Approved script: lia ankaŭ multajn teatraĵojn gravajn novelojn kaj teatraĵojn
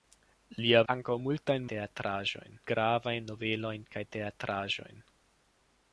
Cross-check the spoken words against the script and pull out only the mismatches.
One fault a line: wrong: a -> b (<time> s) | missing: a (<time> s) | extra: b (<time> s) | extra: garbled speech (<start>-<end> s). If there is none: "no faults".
no faults